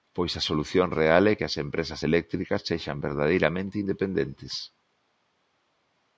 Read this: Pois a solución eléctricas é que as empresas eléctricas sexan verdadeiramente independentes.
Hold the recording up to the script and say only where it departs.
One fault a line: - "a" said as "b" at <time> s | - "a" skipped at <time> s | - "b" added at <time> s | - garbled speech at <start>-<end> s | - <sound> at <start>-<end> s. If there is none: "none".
- "eléctricas" said as "real" at 0.9 s